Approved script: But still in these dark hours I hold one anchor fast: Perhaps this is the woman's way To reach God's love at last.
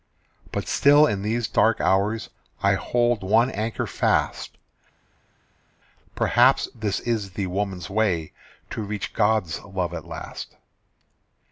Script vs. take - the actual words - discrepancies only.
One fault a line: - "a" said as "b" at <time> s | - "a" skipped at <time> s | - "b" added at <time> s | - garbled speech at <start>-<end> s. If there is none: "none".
none